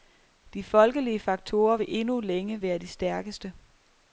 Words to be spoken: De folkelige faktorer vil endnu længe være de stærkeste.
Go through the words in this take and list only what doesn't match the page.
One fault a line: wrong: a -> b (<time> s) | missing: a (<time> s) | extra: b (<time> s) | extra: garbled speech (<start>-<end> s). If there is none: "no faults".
no faults